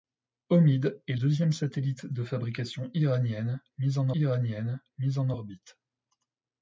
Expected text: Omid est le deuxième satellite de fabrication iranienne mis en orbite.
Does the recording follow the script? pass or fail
fail